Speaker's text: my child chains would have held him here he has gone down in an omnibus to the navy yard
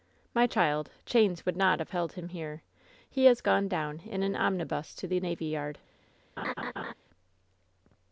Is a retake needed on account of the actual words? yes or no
yes